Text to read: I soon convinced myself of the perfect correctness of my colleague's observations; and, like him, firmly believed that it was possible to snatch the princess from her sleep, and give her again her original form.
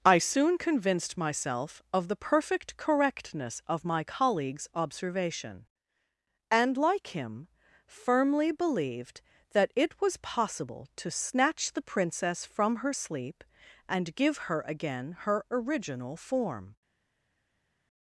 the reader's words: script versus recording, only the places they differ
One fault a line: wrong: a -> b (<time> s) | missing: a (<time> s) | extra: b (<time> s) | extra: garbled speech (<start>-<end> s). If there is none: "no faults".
wrong: observations -> observation (4.7 s)